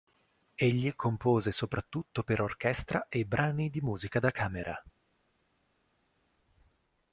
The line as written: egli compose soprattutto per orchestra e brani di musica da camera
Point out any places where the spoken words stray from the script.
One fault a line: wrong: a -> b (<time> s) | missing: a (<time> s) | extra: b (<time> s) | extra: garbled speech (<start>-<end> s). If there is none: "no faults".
no faults